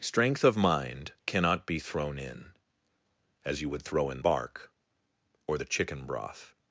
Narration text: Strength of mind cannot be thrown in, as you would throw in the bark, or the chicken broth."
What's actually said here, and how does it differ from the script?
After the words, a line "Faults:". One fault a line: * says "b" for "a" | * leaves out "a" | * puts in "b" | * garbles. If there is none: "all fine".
Strength of mind cannot be thrown in, as you would throw in bark, or the chicken broth."
Faults:
* leaves out "the"